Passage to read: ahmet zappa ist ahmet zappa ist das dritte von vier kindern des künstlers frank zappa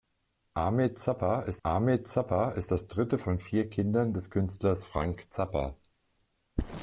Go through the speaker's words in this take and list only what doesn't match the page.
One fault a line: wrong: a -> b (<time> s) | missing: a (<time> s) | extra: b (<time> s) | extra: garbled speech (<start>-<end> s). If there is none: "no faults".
no faults